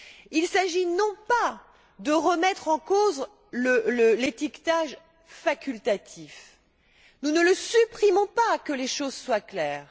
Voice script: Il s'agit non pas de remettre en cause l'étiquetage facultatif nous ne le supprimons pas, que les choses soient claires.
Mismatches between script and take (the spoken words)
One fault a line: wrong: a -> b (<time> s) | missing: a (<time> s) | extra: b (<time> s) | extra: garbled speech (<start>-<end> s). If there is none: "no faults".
no faults